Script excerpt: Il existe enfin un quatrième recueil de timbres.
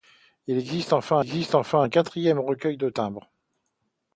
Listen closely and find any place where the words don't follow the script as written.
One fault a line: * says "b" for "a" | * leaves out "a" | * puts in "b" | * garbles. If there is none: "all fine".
* puts in "existe enfin"